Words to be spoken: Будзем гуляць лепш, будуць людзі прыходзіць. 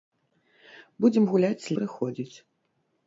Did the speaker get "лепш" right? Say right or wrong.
wrong